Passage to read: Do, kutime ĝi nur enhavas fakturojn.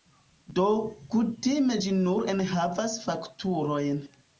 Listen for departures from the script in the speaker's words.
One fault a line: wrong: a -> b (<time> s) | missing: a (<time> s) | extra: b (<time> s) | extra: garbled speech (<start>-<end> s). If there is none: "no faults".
no faults